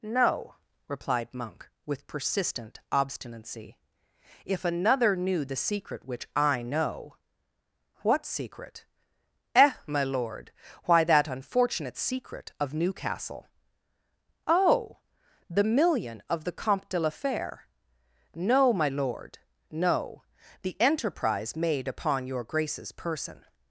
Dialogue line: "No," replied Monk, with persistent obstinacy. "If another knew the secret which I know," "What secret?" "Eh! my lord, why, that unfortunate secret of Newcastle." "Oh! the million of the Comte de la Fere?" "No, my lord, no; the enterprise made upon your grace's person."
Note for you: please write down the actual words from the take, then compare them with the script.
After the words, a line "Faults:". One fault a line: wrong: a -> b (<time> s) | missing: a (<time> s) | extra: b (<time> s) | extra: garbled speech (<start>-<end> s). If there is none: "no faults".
"No," replied Monk, with persistent obstinacy. "If another knew the secret which I know," "What secret?" "Eh! my lord, why, that unfortunate secret of Newcastle." "Oh! the million of the Comte de la Fere?" "No, my lord, no; the enterprise made upon your grace's person."
Faults:
no faults